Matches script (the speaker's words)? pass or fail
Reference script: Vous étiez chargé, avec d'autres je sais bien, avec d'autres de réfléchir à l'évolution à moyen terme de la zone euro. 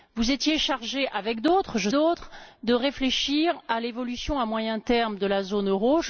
fail